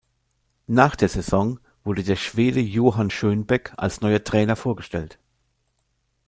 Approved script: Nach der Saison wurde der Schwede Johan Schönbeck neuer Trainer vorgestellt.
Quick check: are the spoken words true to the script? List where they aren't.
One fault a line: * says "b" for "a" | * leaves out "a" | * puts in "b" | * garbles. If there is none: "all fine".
* puts in "als"